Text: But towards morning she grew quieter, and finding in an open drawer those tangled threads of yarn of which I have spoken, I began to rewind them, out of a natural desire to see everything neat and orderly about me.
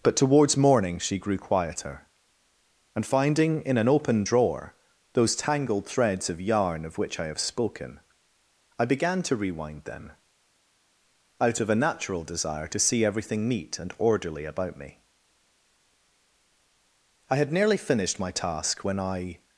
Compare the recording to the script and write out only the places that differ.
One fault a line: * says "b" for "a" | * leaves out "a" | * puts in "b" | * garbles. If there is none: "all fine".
* puts in "I had nearly finished my task when I"